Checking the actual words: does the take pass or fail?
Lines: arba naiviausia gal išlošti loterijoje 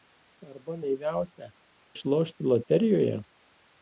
fail